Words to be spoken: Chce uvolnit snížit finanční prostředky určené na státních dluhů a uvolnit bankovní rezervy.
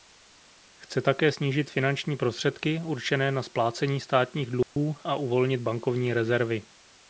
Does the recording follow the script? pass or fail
fail